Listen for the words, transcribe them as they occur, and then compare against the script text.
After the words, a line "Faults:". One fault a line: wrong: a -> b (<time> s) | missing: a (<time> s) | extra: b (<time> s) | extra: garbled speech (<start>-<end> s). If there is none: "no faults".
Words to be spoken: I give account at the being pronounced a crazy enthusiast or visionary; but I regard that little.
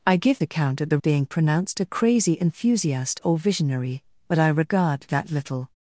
I give account at the being pronounced a crazy enthusiast or visionary; but I regard that little.
Faults:
no faults